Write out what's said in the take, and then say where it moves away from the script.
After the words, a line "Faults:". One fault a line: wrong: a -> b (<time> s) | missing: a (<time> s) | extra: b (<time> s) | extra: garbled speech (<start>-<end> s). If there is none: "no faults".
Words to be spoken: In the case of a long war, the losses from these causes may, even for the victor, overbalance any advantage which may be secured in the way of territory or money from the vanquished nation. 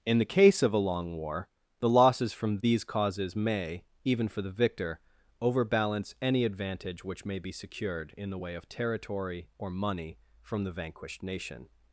In the case of a long war, the losses from these causes may, even for the victor, overbalance any advantage which may be secured in the way of territory or money from the vanquished nation.
Faults:
no faults